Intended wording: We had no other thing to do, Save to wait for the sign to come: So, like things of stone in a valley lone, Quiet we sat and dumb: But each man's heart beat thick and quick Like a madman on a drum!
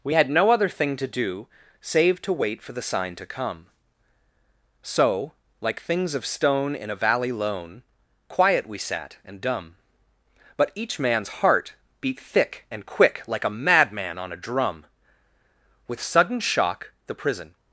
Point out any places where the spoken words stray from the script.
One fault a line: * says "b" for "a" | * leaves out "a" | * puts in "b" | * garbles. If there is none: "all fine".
* puts in "With sudden shock the prison"